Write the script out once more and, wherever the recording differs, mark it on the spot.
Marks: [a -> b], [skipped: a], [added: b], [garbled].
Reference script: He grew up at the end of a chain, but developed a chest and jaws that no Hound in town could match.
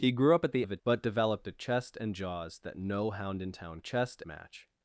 He grew up at the [skipped: end] of a [skipped: chain,] but developed a chest and jaws that no Hound in town [could -> chest] match.